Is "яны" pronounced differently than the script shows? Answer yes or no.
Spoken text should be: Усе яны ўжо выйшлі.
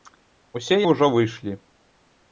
yes